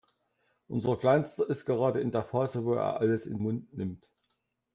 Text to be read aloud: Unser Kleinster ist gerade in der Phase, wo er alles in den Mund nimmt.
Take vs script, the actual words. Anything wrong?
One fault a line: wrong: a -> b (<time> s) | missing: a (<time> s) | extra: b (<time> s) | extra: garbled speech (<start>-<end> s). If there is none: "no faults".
missing: den (3.4 s)